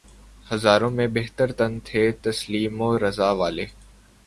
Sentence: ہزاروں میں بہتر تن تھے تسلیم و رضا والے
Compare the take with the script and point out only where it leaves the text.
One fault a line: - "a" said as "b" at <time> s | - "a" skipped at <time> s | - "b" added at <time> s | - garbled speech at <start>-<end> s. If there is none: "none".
none